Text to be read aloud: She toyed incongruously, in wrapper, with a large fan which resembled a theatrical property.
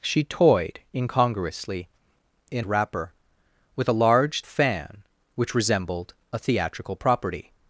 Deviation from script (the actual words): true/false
false